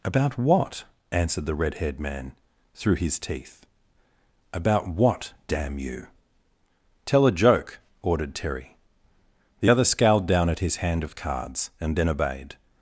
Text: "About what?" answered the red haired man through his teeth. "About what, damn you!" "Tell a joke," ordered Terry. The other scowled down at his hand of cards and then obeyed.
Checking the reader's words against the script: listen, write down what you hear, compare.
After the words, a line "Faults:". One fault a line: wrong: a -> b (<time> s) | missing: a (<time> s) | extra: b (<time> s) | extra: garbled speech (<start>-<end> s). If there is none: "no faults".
"About what?" answered the red haired man through his teeth. "About what, damn you!" "Tell a joke," ordered Terry. The other scowled down at his hand of cards and then obeyed.
Faults:
no faults